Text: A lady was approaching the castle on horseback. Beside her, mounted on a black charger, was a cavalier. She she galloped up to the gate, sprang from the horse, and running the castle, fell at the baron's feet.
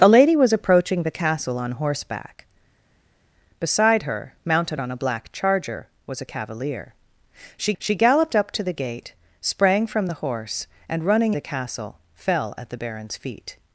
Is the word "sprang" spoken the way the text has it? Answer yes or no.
yes